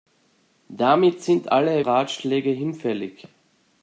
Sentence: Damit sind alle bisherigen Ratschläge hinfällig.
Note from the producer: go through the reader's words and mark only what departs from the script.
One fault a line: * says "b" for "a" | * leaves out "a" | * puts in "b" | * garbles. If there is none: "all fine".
* leaves out "bisherigen"